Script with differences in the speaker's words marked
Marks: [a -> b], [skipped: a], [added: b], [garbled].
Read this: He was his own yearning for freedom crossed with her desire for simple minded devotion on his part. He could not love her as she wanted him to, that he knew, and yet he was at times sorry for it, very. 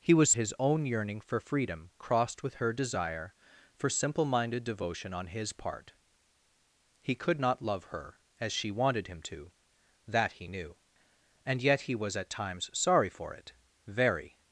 He was his own yearning for freedom crossed with her desire for simple minded devotion on his part. He could not love her as she wanted him to, that he knew, and yet he was at times sorry for it, very.